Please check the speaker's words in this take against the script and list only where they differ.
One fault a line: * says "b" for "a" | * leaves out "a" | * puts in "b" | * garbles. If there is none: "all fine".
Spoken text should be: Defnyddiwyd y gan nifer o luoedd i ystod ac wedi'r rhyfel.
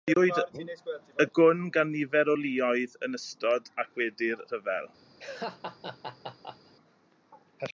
* puts in "gwn"
* says "yn" for "i"